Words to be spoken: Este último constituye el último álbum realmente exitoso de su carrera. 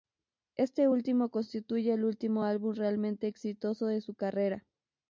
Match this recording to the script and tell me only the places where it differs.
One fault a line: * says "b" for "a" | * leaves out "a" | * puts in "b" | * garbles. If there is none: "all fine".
all fine